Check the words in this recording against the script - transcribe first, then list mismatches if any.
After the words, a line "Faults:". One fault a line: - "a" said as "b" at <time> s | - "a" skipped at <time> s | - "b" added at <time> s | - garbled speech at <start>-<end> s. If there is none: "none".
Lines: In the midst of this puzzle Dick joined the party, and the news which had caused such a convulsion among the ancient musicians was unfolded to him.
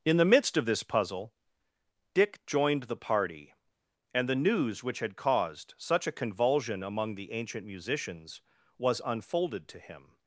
In the midst of this puzzle Dick joined the party, and the news which had caused such a convulsion among the ancient musicians was unfolded to him.
Faults:
none